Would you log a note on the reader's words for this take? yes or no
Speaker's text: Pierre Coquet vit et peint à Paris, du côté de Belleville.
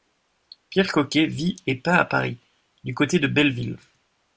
no